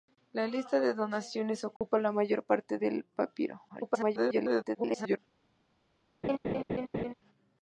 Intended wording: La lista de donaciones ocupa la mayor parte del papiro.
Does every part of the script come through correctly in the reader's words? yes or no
no